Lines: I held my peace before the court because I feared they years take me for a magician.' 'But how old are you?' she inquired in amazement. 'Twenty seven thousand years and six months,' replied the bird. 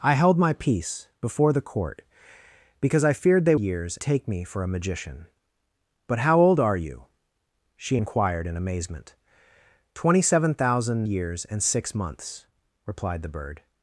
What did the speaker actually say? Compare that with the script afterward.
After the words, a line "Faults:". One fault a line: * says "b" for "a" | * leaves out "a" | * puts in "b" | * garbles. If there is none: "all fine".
I held my peace before the court because I feared they years take me for a magician.' 'But how old are you?' she inquired in amazement. 'Twenty seven thousand years and six months,' replied the bird.
Faults:
all fine